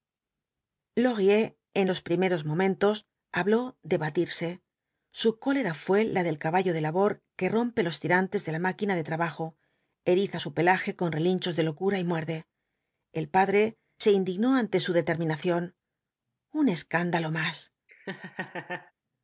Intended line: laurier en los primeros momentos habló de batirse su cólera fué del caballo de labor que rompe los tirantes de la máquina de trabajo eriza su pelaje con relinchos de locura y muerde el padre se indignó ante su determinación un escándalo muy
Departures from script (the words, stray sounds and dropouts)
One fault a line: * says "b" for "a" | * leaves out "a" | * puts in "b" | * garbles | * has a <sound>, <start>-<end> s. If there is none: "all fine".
* puts in "la"
* says "más" for "muy"
* has a laugh, 17.9-18.9 s